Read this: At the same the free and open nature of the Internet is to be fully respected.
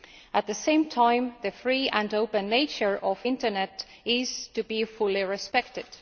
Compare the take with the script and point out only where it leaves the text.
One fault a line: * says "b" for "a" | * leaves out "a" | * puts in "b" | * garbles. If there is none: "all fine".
* puts in "time"